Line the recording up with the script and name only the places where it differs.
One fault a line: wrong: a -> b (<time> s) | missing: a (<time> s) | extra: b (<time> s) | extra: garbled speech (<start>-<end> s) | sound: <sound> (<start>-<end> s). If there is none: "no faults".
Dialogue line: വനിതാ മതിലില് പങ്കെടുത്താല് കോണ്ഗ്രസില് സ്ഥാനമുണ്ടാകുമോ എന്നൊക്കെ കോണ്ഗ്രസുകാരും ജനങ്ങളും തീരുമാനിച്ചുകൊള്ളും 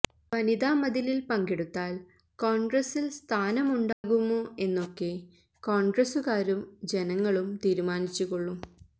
sound: dropout (3.9-4.0 s)